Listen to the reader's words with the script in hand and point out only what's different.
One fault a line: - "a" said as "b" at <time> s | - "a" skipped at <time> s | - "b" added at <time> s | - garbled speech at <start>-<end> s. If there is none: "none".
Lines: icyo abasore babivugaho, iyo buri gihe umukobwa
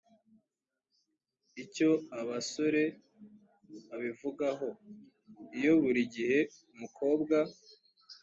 none